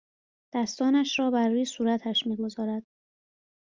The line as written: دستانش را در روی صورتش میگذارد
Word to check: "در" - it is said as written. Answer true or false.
false